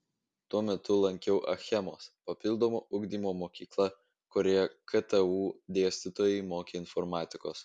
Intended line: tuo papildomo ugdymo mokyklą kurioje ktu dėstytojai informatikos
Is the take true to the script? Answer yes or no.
no